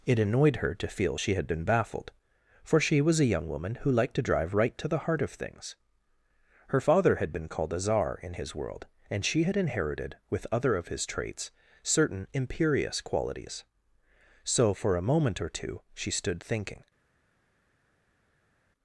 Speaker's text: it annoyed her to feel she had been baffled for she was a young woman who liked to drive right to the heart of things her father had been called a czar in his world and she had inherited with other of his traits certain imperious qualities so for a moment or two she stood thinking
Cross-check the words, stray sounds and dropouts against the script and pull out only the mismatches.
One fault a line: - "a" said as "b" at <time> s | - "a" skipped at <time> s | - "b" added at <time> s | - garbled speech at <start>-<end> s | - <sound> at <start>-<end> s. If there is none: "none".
none